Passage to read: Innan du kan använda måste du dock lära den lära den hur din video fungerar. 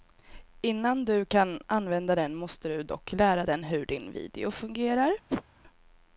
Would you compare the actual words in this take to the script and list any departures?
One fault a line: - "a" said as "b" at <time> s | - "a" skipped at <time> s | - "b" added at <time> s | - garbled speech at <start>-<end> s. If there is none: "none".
- "den" added at 2.1 s
- "lära den" skipped at 3.6 s